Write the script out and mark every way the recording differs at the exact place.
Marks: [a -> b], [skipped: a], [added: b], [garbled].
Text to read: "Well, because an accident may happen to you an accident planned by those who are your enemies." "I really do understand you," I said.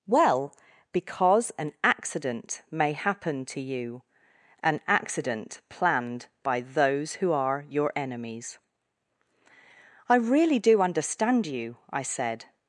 "Well, because an accident may happen to you an accident planned by those who are your enemies." "I really do understand you," I said.